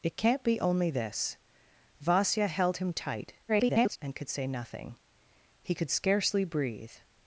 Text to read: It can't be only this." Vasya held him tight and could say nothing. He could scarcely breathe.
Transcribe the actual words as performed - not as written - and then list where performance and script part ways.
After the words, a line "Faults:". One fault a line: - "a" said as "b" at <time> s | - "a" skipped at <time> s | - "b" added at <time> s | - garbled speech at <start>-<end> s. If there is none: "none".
It can't be only this." Vasya held him tight [garbled] and could say nothing. He could scarcely breathe.
Faults:
- garbled speech at 3.5-4.0 s